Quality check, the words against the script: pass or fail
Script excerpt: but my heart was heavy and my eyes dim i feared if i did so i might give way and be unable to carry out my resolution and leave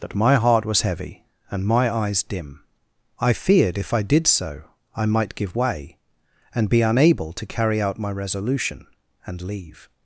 fail